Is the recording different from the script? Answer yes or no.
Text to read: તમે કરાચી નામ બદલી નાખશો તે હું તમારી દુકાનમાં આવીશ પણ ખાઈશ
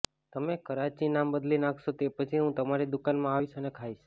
yes